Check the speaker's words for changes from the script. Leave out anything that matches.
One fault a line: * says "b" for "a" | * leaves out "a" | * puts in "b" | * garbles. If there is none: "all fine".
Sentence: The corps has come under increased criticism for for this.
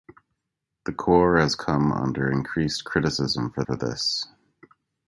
all fine